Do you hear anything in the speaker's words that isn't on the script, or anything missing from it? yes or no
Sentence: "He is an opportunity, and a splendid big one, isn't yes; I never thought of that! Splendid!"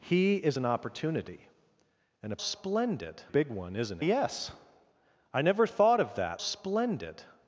no